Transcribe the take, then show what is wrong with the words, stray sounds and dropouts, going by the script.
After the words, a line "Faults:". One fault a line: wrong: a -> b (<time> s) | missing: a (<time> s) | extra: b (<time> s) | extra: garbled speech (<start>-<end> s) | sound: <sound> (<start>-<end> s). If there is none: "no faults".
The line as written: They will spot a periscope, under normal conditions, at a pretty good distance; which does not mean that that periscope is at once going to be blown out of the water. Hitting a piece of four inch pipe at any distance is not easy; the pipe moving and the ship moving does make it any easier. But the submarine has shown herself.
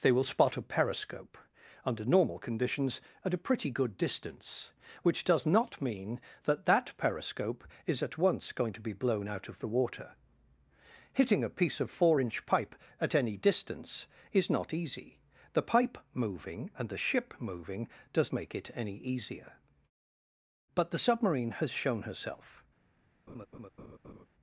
They will spot a periscope, under normal conditions, at a pretty good distance; which does not mean that that periscope is at once going to be blown out of the water. Hitting a piece of four inch pipe at any distance is not easy; the pipe moving and the ship moving does make it any easier. But the submarine has shown herself.
Faults:
sound: laugh (23.3-24.3 s)